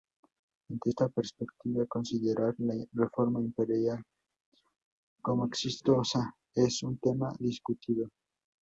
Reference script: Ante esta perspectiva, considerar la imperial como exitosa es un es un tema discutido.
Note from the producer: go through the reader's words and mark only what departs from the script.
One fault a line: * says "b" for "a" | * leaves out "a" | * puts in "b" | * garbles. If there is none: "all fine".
* puts in "reforma"
* leaves out "es un"